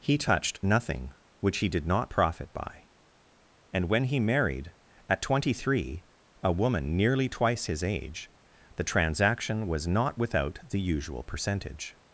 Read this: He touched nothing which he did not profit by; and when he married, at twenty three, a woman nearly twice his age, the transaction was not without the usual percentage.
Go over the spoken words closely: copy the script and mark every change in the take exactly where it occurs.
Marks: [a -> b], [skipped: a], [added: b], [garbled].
He touched nothing which he did not profit by; and when he married, at twenty three, a woman nearly twice his age, the transaction was not without the usual percentage.